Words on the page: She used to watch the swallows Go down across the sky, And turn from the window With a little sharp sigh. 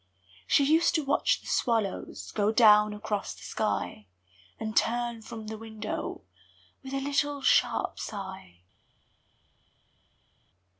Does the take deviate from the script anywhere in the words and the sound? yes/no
no